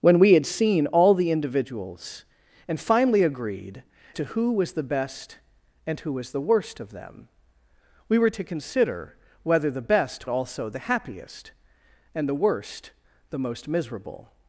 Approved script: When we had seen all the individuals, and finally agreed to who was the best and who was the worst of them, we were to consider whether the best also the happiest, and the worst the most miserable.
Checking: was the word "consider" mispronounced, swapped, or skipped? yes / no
no